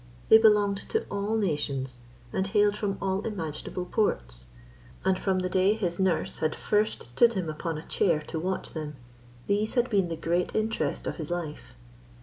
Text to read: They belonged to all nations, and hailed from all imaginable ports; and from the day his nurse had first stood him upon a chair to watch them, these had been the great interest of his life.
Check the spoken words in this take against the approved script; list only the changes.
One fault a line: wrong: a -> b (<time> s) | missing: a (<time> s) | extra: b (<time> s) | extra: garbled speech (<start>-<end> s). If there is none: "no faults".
no faults